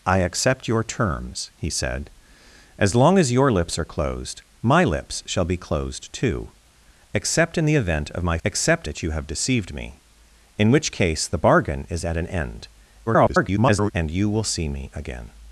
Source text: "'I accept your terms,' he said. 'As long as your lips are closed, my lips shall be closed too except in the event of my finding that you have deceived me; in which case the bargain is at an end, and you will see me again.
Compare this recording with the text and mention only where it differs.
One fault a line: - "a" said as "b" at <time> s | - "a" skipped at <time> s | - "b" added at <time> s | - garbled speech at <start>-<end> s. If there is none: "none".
- "finding" said as "except" at 8.4 s
- garbled speech at 13.1-13.9 s